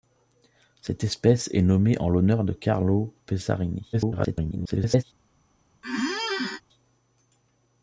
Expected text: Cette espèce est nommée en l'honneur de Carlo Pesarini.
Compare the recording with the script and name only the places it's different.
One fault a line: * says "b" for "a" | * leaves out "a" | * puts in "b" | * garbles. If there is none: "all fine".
* garbles